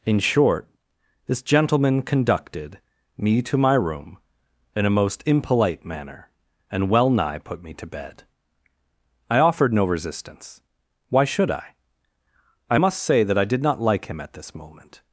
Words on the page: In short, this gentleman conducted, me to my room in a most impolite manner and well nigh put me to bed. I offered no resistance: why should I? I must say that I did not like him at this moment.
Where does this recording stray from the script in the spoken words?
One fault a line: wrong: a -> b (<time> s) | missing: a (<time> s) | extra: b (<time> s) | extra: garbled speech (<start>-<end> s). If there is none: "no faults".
no faults